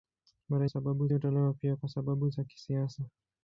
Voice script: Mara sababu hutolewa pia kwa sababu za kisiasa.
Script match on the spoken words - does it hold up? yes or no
yes